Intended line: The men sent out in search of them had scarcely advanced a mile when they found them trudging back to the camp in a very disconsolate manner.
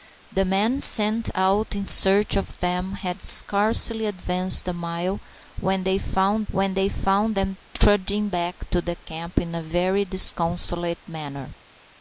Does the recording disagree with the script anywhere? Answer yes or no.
yes